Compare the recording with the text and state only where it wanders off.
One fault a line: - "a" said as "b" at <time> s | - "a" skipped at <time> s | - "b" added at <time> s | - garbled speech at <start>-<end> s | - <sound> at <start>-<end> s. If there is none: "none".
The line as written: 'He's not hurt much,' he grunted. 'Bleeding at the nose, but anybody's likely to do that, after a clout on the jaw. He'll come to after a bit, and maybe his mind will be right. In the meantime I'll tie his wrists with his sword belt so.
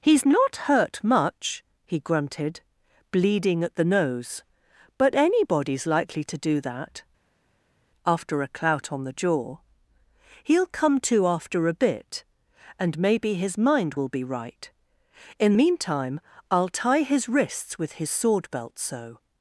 - "the" skipped at 15.5 s